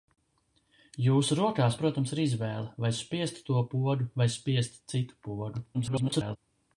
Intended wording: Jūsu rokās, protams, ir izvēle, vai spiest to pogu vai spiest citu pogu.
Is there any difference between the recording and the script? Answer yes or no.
yes